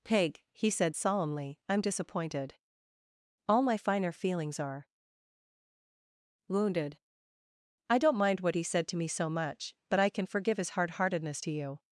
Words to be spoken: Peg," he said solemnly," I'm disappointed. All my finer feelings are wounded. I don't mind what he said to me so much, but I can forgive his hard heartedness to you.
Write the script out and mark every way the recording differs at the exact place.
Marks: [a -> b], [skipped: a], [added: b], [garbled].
Peg," he said solemnly," I'm disappointed. All my finer feelings are wounded. I don't mind what he said to me so much, but I can forgive his hard heartedness to you.